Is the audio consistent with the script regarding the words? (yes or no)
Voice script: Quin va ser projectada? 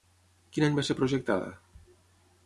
no